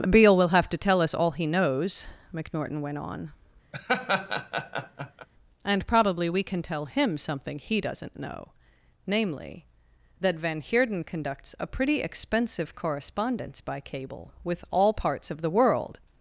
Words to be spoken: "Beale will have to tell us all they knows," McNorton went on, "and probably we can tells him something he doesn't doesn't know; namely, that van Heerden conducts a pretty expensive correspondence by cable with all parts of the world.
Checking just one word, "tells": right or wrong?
wrong